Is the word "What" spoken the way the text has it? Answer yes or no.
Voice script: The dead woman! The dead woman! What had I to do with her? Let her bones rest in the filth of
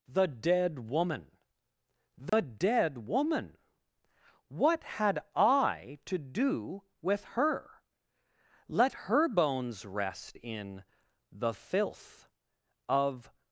yes